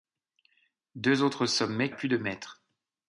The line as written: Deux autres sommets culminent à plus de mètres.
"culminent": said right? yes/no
no